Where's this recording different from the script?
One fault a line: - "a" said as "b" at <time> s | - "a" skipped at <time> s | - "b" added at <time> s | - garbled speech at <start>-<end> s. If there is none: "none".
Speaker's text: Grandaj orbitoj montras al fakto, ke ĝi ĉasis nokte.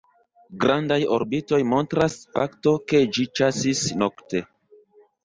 - "al" skipped at 2.1 s